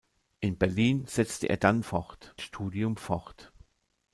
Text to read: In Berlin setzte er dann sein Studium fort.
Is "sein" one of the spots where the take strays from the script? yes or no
yes